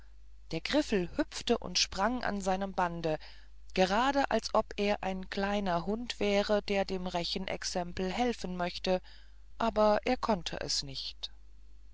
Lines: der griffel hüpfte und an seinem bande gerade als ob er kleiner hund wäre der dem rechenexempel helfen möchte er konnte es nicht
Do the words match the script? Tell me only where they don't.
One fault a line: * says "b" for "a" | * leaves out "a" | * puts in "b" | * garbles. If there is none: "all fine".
* puts in "sprang"
* puts in "ein"
* puts in "aber"